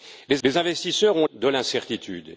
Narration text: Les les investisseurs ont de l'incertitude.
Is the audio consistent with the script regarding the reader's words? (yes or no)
yes